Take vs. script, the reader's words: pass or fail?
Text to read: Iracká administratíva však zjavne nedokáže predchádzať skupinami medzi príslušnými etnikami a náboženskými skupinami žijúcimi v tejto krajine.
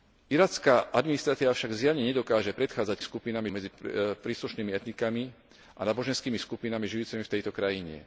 pass